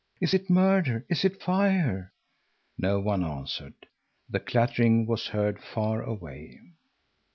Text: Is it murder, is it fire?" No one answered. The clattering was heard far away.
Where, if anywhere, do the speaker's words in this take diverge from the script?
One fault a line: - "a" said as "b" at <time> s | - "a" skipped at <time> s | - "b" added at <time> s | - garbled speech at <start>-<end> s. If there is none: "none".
none